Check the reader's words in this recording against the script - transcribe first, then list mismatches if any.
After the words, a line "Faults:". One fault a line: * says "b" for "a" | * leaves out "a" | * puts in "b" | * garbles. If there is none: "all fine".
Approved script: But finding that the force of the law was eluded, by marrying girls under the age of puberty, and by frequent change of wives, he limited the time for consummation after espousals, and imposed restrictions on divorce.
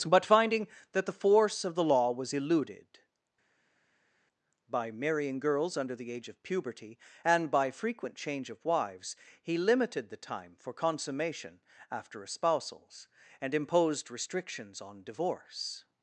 But finding that the force of the law was eluded, by marrying girls under the age of puberty, and by frequent change of wives, he limited the time for consummation after espousals, and imposed restrictions on divorce.
Faults:
all fine